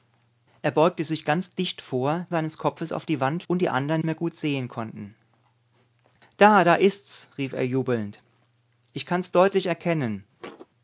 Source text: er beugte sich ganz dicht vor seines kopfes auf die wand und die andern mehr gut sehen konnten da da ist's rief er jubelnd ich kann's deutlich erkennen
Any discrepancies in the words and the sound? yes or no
yes